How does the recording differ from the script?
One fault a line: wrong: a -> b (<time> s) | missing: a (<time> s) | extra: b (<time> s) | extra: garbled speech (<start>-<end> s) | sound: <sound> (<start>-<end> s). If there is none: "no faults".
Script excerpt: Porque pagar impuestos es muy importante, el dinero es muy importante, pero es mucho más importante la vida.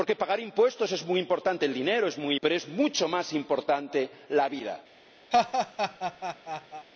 missing: importante (2.4 s)
sound: laugh (5.3-6.9 s)